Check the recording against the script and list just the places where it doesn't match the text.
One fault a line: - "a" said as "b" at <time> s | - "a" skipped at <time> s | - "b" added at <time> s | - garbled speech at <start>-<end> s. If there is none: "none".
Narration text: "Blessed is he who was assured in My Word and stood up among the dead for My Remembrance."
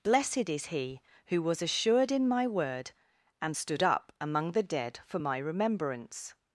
none